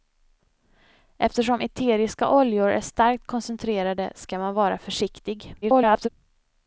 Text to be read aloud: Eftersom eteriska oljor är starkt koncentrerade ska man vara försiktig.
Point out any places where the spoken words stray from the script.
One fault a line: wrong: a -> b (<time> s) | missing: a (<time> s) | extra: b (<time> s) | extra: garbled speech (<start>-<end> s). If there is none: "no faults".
extra: garbled speech (5.6-6.1 s)